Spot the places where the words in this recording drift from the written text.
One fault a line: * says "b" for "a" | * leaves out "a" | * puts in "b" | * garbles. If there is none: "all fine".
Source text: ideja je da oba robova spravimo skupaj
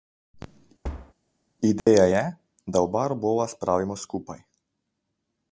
all fine